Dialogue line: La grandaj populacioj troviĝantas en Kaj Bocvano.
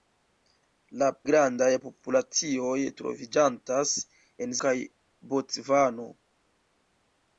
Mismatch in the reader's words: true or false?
false